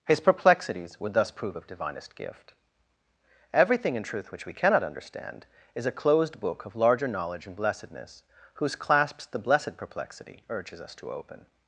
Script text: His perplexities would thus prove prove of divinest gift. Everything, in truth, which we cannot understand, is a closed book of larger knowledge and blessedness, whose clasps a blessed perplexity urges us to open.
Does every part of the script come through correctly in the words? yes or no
no